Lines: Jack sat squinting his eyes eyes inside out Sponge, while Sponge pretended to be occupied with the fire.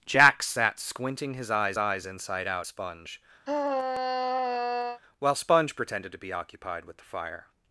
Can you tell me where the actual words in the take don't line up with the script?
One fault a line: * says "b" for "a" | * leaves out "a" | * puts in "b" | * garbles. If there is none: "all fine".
all fine